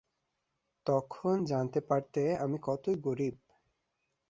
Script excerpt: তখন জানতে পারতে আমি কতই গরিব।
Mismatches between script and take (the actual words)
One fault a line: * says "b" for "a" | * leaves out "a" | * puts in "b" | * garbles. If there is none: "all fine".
all fine